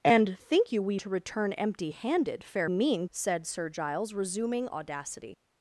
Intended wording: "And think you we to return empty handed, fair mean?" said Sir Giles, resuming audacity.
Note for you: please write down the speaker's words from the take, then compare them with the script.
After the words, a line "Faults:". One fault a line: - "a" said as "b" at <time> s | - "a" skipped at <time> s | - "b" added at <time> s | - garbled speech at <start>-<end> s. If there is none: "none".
"And think you we to return empty handed, fair mean?" said Sir Giles, resuming audacity.
Faults:
none